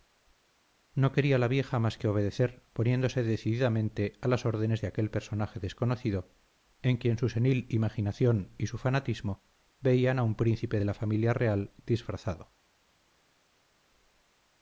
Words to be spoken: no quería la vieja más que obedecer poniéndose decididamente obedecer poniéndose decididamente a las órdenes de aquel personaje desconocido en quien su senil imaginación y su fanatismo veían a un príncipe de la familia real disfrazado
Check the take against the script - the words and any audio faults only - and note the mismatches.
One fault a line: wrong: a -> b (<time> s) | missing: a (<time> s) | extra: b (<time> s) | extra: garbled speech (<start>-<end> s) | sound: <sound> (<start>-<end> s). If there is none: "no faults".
missing: obedecer poniéndose decididamente (4.1 s)